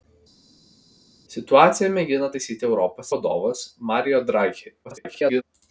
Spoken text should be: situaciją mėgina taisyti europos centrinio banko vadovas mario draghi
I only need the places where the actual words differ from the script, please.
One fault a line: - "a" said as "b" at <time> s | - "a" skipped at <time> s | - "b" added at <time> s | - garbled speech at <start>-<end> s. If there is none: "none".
- "centrinio banko" skipped at 3.1 s
- garbled speech at 4.8-5.4 s